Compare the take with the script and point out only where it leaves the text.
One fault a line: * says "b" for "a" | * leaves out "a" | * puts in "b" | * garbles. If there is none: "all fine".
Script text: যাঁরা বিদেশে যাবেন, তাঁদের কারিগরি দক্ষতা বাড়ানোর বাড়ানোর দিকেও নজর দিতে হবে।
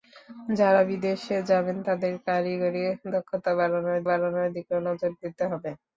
all fine